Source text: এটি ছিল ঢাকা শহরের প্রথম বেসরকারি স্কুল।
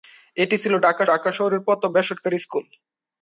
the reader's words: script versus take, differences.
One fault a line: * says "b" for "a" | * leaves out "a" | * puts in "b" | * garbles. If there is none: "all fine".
* puts in "ঢাকা"